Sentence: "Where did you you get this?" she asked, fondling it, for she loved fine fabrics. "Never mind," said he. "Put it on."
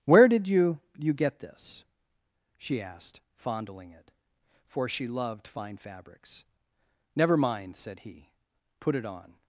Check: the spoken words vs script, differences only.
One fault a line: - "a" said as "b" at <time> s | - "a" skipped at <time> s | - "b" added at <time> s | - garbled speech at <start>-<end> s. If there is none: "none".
none